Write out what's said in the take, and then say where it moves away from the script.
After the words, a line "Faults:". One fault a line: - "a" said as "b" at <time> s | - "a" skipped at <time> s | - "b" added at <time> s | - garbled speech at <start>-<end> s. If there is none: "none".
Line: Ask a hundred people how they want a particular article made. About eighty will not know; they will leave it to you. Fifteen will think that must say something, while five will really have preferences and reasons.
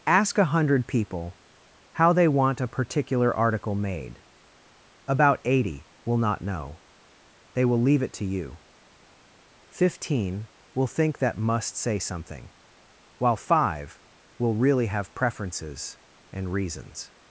Ask a hundred people how they want a particular article made. About eighty will not know; they will leave it to you. Fifteen will think that must say something, while five will really have preferences and reasons.
Faults:
none